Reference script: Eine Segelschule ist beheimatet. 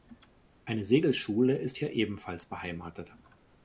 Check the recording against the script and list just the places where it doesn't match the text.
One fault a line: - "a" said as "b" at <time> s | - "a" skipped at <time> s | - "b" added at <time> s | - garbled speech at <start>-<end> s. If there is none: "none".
- "hier ebenfalls" added at 1.7 s